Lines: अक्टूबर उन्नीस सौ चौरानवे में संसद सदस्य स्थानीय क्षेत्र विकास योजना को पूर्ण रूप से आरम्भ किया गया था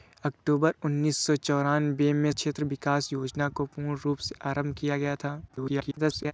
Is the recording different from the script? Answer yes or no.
yes